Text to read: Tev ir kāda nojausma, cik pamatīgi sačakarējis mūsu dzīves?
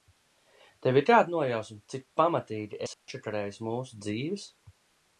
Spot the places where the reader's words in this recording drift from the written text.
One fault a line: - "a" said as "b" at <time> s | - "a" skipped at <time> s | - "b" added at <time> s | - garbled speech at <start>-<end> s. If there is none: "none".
none